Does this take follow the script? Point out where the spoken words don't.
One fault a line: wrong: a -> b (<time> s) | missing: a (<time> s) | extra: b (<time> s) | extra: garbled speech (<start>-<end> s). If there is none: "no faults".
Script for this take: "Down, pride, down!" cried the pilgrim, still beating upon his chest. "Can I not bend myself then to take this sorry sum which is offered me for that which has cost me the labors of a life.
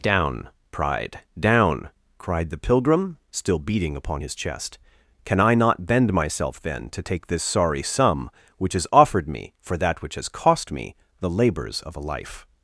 no faults